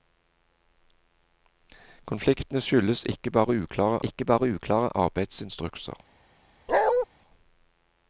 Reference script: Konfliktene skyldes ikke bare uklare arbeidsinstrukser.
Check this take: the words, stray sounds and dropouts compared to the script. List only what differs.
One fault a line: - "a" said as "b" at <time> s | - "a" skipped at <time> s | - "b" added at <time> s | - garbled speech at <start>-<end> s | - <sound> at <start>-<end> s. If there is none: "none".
- "ikke bare uklare" added at 4.0 s
- bark at 6.7-7.1 s